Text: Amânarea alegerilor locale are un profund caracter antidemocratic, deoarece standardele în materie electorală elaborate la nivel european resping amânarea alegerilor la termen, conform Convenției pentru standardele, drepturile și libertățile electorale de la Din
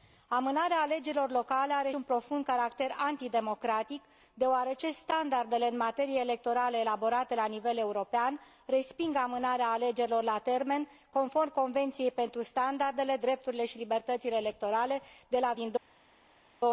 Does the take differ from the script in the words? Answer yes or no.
no